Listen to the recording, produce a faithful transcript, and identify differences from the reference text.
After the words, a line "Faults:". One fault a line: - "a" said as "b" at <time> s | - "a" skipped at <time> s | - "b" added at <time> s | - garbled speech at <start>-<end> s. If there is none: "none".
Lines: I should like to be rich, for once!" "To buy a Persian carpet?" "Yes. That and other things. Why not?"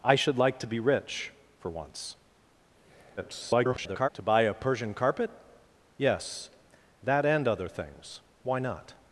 I should like to be rich, for once!" [garbled] "To buy a Persian carpet?" "Yes. That and other things. Why not?"
Faults:
- garbled speech at 3.2-4.1 s